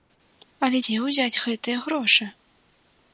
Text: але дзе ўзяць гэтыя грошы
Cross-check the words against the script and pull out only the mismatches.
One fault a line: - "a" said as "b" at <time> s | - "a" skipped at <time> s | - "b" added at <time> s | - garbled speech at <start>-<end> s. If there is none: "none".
none